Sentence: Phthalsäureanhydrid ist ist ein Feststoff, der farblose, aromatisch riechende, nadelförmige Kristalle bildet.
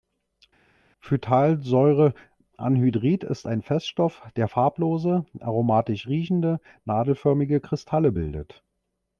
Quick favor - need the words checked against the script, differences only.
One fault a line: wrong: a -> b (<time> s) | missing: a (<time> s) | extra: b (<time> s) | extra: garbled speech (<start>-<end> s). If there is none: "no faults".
missing: ist (3.5 s)